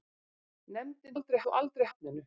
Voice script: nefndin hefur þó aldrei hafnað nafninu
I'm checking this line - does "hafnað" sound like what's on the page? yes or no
no